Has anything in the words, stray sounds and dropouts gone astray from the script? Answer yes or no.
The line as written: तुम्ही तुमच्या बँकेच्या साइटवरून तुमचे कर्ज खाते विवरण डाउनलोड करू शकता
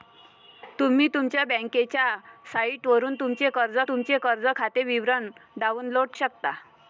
yes